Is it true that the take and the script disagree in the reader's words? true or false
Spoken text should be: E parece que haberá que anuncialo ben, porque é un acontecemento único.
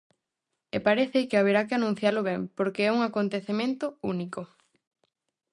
false